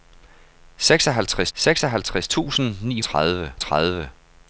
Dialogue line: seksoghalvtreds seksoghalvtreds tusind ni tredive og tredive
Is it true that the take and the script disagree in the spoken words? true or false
false